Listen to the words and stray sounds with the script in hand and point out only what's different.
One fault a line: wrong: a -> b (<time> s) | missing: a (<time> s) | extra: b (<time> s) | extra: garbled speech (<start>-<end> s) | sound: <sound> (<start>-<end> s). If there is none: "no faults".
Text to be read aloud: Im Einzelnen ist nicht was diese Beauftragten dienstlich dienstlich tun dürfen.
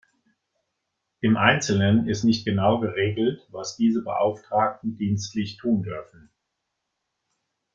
extra: genau geregelt (2.4 s)
missing: dienstlich (5.6 s)